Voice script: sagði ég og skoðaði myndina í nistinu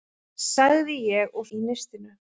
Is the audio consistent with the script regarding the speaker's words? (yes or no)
no